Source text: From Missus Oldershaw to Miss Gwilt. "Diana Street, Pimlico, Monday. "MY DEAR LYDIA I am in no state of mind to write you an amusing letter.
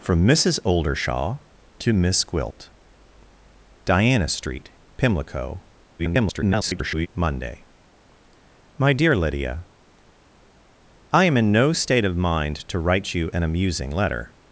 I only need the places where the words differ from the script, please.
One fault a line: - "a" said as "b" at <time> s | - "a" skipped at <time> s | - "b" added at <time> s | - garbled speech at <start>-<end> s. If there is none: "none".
- garbled speech at 6.0-7.1 s